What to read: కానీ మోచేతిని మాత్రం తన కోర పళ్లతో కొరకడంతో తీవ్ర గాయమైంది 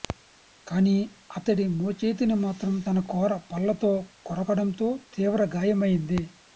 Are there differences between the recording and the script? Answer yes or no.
yes